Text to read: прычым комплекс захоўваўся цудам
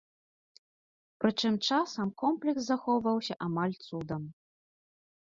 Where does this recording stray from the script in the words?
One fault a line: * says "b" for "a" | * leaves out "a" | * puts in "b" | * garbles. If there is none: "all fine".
* puts in "часам"
* puts in "амаль"